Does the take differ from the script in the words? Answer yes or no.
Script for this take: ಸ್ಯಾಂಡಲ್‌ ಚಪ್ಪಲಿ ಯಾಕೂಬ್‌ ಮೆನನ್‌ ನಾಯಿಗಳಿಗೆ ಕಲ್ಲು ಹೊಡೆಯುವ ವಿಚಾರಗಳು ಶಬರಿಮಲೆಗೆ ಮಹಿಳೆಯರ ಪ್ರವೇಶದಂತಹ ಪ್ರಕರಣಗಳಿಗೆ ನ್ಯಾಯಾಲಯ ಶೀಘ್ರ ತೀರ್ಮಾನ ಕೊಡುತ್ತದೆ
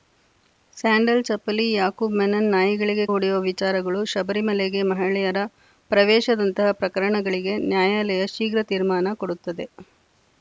yes